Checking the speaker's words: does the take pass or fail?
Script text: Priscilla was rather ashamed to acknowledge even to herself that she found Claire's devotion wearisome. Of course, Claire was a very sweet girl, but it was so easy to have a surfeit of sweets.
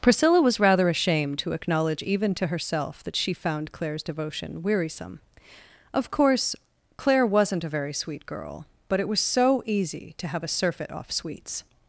fail